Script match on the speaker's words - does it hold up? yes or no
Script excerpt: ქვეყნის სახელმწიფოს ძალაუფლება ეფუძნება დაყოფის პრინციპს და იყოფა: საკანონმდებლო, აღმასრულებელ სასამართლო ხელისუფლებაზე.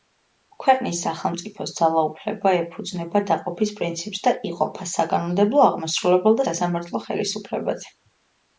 yes